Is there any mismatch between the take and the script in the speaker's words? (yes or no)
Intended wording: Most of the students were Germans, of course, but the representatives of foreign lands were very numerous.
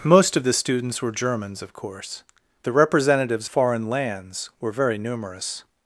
yes